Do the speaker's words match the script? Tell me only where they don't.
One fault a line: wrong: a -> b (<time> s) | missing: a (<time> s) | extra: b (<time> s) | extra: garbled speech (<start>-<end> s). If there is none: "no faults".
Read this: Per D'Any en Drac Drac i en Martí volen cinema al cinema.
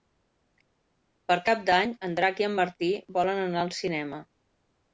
extra: Cap (1.5 s)
missing: Drac (2.4 s)
wrong: cinema -> anar (3.5 s)